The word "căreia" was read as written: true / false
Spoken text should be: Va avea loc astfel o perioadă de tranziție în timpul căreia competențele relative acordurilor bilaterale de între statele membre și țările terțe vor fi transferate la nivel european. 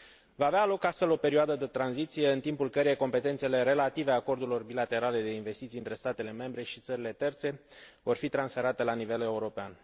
true